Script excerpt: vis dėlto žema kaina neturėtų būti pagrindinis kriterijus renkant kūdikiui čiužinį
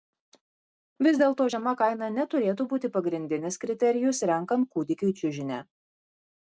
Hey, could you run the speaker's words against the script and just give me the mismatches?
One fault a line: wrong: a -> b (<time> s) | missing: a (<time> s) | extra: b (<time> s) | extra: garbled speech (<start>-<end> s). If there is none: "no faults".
no faults